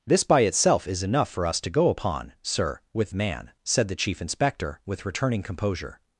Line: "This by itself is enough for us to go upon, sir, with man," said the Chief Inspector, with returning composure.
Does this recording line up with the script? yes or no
yes